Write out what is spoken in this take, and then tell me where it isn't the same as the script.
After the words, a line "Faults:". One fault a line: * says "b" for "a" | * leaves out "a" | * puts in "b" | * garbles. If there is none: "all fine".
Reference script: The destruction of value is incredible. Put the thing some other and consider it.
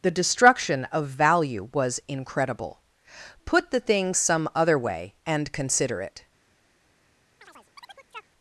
The destruction of value was incredible. Put the thing some other way and consider it.
Faults:
* says "was" for "is"
* puts in "way"